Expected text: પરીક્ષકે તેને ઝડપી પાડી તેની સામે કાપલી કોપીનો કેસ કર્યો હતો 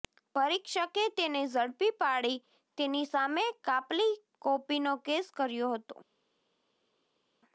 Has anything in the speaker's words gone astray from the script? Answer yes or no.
no